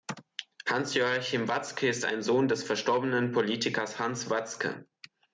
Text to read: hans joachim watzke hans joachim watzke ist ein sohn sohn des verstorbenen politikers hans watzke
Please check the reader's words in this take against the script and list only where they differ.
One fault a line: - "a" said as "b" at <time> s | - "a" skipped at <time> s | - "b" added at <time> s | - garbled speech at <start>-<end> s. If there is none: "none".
- "hans joachim watzke" skipped at 1.9 s
- "sohn" skipped at 2.5 s